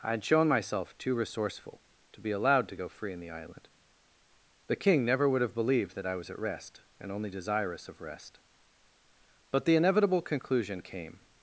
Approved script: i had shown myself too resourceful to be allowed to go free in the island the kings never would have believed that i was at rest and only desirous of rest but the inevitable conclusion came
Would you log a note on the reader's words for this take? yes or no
yes